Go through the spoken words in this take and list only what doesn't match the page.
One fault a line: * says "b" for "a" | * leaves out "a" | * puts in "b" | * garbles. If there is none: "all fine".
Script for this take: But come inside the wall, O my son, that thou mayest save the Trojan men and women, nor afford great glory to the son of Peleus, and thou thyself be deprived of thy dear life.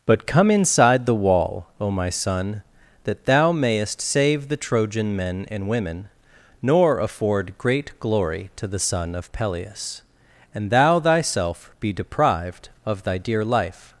all fine